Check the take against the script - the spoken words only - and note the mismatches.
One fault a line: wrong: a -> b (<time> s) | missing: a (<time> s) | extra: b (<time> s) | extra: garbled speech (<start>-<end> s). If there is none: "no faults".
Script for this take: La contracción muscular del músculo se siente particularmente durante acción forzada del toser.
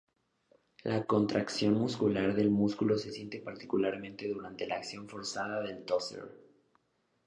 extra: la (4.7 s)